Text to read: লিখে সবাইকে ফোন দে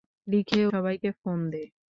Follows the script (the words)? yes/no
yes